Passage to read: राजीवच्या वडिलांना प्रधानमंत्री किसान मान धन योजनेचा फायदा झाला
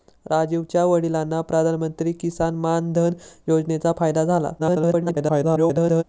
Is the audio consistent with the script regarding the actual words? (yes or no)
no